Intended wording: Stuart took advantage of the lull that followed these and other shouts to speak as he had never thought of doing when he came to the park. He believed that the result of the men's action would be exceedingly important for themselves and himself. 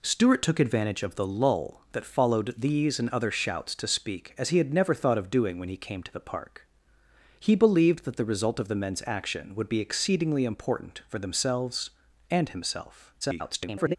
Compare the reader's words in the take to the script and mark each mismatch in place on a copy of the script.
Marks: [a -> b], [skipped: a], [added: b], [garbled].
Stuart took advantage of the lull that followed these and other shouts to speak as he had never thought of doing when he came to the park. He believed that the result of the men's action would be exceedingly important for themselves and himself. [garbled]